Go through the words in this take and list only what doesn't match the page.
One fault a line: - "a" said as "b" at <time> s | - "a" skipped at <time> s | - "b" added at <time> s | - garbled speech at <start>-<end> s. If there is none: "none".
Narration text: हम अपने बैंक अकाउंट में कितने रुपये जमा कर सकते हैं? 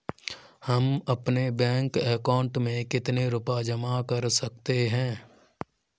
none